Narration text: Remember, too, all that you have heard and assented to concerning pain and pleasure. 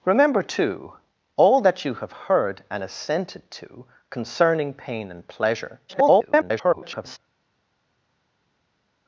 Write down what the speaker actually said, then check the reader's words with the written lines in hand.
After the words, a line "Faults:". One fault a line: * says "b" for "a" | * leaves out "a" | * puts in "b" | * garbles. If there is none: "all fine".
Remember, too, all that you have heard and assented to concerning pain and pleasure. [garbled]
Faults:
* garbles